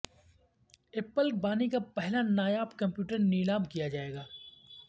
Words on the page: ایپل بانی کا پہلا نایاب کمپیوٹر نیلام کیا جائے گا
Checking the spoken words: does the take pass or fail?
pass